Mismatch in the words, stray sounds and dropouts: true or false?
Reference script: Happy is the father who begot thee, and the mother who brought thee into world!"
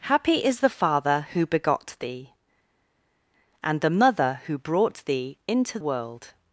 false